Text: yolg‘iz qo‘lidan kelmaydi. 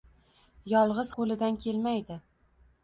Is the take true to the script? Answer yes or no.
yes